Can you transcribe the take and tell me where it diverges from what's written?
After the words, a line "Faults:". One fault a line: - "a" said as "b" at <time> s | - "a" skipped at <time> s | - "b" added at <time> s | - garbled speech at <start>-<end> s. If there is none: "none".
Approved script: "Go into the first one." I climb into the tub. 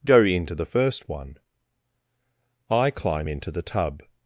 "Go into the first one." I climb into the tub.
Faults:
none